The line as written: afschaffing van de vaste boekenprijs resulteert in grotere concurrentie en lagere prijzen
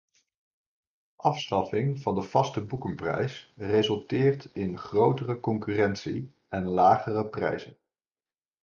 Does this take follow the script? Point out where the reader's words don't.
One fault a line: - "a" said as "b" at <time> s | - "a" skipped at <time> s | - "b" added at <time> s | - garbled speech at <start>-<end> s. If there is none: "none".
none